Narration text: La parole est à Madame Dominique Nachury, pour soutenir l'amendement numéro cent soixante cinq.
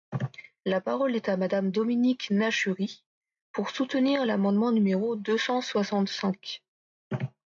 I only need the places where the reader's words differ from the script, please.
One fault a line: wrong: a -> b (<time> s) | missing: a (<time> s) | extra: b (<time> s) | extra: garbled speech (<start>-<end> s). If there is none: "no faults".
extra: deux (5.2 s)